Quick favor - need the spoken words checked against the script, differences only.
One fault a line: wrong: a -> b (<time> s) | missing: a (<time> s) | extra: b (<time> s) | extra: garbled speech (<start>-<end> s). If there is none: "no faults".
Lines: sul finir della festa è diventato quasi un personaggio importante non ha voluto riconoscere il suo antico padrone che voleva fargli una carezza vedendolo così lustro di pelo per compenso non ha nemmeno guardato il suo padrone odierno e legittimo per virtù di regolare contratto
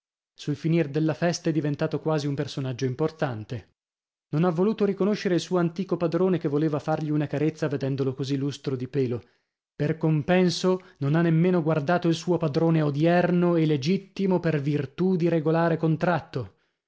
no faults